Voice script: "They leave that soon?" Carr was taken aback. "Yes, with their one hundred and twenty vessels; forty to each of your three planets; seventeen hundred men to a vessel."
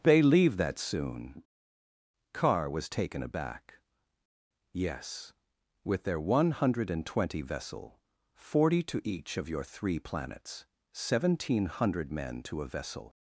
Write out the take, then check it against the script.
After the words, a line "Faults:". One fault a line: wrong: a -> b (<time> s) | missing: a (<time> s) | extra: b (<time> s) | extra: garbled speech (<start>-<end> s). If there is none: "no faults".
"They leave that soon?" Carr was taken aback. "Yes, with their one hundred and twenty vessel; forty to each of your three planets; seventeen hundred men to a vessel."
Faults:
wrong: vessels -> vessel (7.4 s)